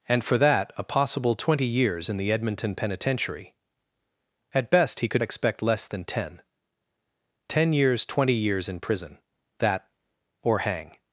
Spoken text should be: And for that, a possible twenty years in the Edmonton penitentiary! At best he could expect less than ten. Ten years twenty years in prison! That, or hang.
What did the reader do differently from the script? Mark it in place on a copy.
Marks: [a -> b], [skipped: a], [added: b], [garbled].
And for that, a possible twenty years in the Edmonton penitentiary! At best he could expect less than ten. Ten years twenty years in prison! That, or hang.